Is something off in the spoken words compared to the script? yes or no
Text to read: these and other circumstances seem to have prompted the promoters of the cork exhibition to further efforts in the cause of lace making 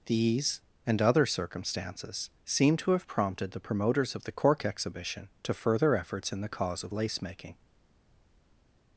no